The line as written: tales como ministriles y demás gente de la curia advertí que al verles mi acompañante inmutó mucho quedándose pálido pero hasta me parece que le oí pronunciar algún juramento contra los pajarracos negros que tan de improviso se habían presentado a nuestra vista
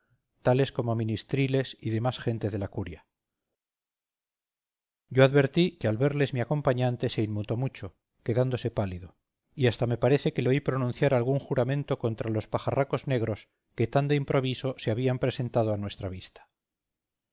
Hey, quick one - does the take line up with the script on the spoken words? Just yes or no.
no